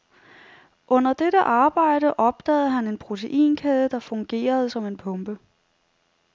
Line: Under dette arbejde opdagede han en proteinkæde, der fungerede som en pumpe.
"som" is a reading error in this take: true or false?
false